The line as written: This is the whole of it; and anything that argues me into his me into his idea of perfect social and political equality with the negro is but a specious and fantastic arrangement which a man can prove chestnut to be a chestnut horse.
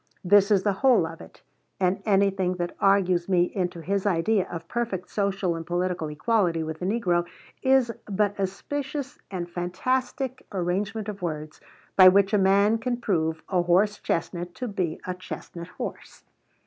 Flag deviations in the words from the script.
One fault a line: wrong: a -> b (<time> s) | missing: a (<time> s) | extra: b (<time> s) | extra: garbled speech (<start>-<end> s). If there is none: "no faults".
missing: me into his (4.1 s)
extra: of words by (11.1 s)
extra: a horse (13.5 s)